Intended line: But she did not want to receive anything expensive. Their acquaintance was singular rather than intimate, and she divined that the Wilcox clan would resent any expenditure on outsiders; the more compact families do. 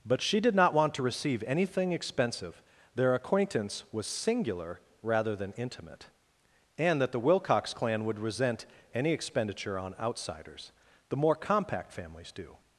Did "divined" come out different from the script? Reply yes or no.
yes